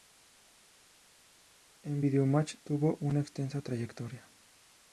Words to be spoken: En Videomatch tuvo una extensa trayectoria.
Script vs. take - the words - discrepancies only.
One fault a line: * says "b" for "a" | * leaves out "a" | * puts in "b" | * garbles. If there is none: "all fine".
all fine